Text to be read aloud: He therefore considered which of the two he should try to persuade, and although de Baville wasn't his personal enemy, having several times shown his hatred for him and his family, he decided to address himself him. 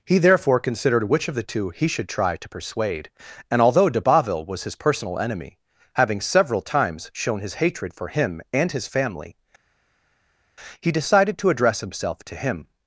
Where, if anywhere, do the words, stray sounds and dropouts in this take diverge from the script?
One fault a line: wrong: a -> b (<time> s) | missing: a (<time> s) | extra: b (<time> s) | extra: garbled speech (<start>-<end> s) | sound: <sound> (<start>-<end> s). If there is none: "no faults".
wrong: wasn't -> was (4.4 s)
extra: to (12.2 s)